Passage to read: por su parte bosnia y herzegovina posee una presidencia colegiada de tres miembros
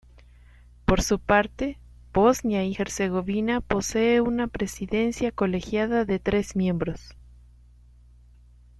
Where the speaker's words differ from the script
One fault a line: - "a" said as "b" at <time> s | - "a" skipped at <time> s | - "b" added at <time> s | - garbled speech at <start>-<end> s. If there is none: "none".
none